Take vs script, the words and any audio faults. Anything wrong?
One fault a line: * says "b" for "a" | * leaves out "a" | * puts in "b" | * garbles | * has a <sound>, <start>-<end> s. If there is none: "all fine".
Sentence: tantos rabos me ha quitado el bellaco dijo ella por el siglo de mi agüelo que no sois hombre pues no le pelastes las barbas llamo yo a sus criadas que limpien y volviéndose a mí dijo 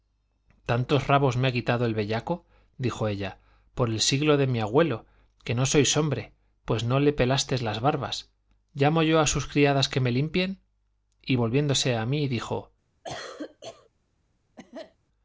* puts in "me"
* has a cough, 13.0-13.9 s
* has a cough, 14.6-15.0 s